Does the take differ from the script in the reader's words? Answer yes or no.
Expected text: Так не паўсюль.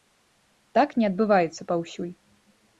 yes